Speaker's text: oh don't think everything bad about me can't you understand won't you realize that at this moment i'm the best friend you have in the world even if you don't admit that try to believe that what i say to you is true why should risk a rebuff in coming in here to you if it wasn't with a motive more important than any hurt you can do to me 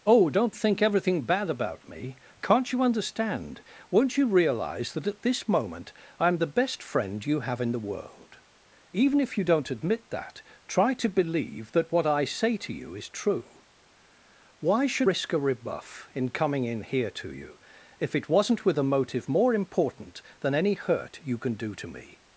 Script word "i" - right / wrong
right